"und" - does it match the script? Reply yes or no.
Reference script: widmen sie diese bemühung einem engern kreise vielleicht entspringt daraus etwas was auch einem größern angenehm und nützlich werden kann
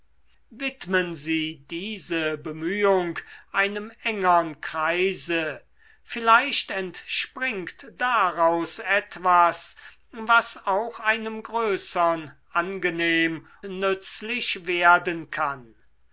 no